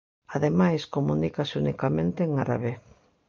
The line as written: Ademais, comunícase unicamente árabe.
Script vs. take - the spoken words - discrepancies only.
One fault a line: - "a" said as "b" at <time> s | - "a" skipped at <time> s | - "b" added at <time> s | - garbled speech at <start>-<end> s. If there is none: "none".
- "en" added at 2.2 s